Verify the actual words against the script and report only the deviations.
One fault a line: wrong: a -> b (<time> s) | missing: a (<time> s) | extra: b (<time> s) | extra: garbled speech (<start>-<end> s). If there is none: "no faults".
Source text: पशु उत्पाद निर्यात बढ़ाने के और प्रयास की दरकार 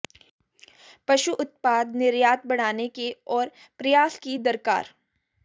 no faults